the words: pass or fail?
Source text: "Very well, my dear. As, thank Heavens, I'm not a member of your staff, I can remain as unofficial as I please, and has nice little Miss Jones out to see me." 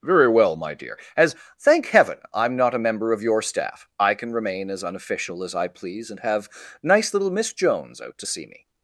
fail